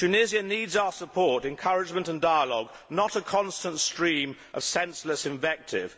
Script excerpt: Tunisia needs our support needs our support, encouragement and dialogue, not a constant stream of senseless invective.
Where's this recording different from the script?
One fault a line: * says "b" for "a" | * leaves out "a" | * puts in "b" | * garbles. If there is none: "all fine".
* leaves out "needs our support"